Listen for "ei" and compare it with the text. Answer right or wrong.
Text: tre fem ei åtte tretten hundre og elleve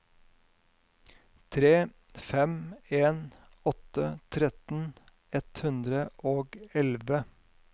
wrong